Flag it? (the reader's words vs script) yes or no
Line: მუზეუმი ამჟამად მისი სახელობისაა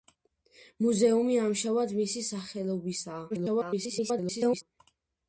yes